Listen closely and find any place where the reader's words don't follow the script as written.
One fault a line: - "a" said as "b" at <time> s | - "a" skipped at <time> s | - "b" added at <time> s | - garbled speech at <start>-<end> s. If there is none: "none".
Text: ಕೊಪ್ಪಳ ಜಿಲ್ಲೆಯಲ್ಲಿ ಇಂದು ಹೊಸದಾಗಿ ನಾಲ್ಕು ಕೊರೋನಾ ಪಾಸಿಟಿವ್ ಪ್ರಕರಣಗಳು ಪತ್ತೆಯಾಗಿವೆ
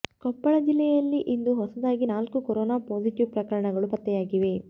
none